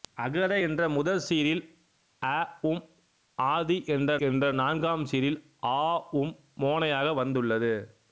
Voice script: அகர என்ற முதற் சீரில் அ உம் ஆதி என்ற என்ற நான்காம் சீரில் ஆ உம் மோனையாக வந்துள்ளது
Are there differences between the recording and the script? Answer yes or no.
no